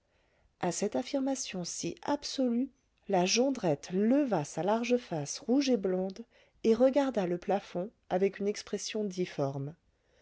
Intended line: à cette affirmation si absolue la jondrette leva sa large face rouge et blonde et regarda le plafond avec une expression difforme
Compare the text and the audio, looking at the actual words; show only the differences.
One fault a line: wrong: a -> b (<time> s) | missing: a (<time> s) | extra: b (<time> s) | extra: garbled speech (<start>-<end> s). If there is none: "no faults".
no faults